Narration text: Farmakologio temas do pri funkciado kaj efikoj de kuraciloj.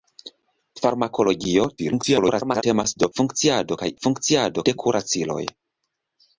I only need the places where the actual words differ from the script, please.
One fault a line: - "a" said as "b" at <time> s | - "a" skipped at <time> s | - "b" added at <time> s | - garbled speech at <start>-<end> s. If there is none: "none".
- garbled speech at 1.8-2.6 s
- "pri" skipped at 3.1 s
- "efikoj" said as "funkciado" at 4.1 s